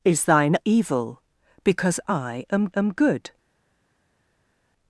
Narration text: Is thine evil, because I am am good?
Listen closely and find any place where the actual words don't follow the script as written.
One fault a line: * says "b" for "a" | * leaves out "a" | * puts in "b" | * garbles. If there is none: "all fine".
all fine